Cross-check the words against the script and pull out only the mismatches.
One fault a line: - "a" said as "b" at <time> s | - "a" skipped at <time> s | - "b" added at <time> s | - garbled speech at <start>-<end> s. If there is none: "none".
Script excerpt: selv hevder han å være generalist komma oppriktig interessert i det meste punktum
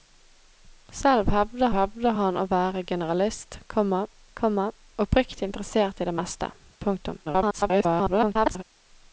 - "hevder" added at 1.7 s
- "komma" added at 4.4 s
- garbled speech at 7.2-8.6 s